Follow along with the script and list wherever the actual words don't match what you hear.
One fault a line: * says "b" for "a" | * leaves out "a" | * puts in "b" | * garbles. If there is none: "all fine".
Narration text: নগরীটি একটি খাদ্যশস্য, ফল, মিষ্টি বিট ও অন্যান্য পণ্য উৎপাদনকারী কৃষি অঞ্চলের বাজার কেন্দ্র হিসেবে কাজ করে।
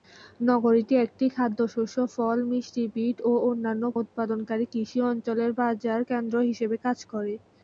* leaves out "পণ্য"